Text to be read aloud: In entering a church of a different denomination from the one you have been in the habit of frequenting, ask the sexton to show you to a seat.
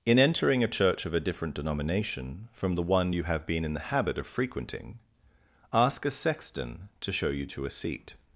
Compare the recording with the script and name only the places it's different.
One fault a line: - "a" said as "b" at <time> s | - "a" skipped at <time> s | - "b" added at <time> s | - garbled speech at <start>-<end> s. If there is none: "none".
- "the" said as "a" at 6.0 s